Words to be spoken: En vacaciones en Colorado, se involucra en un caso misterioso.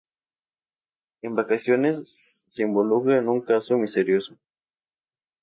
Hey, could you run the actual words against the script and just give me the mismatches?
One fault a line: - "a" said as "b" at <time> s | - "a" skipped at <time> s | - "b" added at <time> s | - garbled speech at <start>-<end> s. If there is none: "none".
- "en Colorado" skipped at 2.5 s